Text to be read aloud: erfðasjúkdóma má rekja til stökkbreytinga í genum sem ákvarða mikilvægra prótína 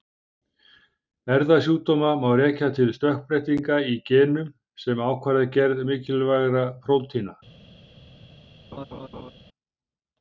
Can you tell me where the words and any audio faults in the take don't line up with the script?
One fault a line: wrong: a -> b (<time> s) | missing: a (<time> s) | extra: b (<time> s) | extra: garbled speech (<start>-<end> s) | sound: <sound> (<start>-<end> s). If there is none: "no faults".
extra: gerð (5.6 s)
sound: laugh (8.7-9.3 s)